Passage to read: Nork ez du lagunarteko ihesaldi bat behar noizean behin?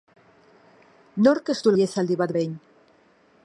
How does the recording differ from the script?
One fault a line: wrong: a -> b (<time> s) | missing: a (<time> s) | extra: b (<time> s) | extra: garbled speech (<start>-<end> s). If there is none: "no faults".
missing: lagunarteko (1.7 s)
missing: behar noizean (2.3 s)